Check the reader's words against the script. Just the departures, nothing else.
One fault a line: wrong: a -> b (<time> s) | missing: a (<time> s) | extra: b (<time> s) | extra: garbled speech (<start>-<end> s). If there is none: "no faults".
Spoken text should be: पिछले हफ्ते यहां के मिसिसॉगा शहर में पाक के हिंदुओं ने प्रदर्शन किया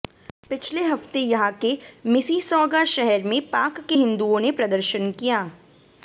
no faults